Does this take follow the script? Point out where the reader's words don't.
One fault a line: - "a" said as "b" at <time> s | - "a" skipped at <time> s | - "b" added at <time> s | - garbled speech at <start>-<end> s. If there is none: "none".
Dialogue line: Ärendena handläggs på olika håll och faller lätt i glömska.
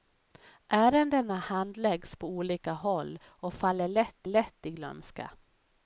- "lätt" added at 4.3 s